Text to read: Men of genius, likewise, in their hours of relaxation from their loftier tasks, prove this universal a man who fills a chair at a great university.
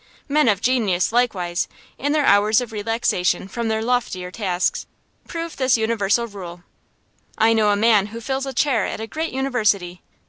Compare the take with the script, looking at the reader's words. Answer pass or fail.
fail